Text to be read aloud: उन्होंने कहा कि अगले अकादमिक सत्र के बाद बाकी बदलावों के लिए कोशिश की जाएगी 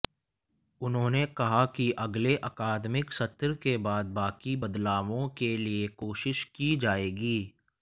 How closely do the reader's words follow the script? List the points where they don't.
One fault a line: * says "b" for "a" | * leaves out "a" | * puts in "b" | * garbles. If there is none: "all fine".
all fine